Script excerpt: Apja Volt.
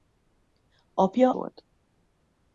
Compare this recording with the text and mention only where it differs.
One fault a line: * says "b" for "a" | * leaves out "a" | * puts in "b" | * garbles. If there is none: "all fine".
all fine